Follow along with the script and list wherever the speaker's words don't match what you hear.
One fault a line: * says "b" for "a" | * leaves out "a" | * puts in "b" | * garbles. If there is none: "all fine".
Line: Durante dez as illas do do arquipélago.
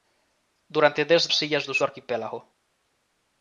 all fine